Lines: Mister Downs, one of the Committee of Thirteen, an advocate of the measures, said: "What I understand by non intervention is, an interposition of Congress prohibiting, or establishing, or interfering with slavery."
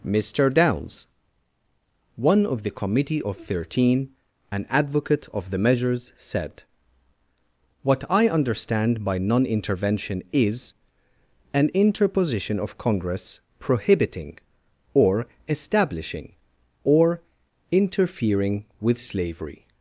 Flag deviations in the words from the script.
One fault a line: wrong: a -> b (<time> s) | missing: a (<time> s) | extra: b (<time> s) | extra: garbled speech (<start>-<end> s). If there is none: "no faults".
no faults